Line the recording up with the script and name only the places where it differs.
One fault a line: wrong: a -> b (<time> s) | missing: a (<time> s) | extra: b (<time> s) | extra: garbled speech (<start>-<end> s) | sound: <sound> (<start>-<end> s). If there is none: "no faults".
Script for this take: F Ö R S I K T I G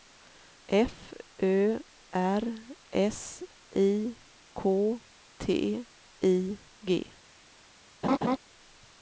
sound: laugh (8.0-8.4 s)